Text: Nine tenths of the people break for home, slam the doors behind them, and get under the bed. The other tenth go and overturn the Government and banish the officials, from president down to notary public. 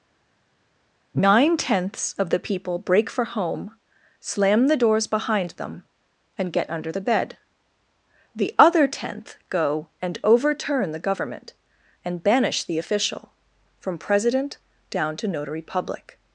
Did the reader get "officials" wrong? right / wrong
wrong